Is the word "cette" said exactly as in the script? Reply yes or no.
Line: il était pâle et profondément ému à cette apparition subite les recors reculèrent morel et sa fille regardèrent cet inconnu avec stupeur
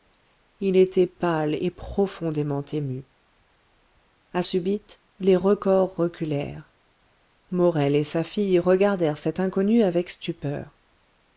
no